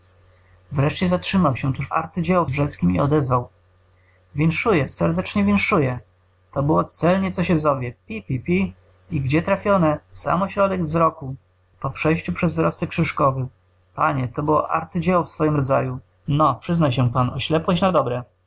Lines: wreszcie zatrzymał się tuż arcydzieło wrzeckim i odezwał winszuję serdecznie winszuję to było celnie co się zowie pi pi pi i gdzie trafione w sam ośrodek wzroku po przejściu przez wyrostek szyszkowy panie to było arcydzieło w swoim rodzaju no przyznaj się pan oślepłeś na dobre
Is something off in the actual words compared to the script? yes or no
no